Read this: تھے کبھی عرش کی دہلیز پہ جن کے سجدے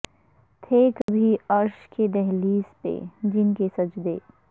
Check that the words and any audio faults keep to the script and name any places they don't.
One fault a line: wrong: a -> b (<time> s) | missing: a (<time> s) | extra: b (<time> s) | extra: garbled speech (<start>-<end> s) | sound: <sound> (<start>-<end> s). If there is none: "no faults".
sound: dropout (1.0-1.1 s)